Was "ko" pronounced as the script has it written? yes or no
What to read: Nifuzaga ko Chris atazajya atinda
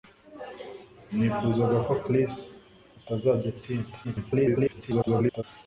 yes